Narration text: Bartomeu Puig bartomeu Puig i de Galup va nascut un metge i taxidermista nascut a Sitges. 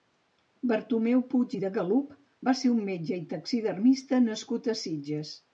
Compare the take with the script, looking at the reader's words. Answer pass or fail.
fail